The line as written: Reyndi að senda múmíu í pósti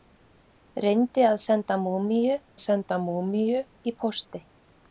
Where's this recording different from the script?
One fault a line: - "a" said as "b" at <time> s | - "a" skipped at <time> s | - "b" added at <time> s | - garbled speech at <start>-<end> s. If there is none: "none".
- "senda múmíu" added at 2.6 s